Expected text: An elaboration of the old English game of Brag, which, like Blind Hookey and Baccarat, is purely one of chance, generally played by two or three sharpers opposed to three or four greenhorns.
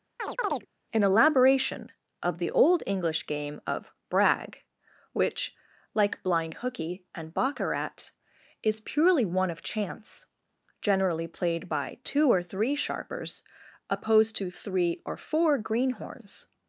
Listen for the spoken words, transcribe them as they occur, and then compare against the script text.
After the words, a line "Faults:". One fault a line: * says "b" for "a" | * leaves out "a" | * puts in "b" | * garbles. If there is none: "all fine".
An elaboration of the old English game of Brag, which, like Blind Hookey and Baccarat, is purely one of chance, generally played by two or three sharpers opposed to three or four greenhorns.
Faults:
all fine